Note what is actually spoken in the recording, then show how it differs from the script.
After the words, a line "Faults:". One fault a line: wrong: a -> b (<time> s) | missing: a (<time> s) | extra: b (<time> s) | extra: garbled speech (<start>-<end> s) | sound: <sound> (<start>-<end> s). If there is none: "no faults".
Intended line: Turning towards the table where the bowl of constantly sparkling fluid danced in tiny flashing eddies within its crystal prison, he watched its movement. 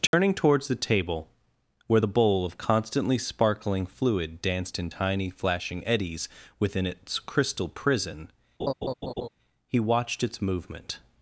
Turning towards the table where the bowl of constantly sparkling fluid danced in tiny flashing eddies within its crystal prison, he watched its movement.
Faults:
sound: dropout (0.1-0.1 s)
sound: laugh (8.6-9.3 s)